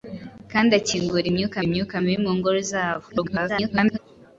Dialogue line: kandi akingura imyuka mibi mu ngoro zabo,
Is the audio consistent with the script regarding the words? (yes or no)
no